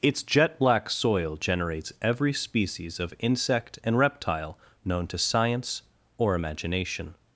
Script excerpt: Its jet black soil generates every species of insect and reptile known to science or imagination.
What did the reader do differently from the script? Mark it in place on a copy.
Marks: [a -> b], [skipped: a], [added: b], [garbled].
Its jet black soil generates every species of insect and reptile known to science or imagination.